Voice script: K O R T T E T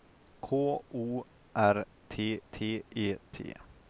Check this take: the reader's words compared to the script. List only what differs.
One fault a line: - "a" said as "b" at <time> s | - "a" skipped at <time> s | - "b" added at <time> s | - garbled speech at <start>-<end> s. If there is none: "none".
none